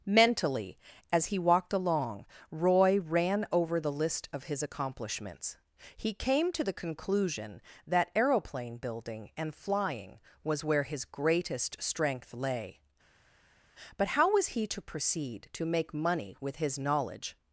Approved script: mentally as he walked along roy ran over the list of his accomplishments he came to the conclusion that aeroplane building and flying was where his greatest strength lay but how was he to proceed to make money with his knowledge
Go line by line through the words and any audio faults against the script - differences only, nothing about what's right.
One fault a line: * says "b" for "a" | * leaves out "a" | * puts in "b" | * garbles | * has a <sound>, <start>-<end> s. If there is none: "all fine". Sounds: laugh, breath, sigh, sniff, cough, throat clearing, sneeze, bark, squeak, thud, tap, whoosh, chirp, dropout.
all fine